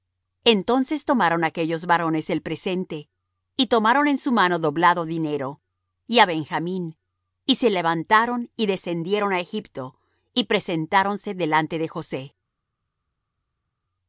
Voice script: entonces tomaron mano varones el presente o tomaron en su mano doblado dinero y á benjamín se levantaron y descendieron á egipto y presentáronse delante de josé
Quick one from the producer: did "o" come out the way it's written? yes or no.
no